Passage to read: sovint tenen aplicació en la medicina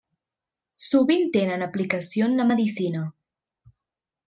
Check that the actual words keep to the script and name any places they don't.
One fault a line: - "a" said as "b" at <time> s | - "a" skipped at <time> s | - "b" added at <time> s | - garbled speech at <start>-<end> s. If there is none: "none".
none